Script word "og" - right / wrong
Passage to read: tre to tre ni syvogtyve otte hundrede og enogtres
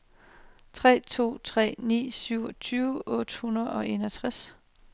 right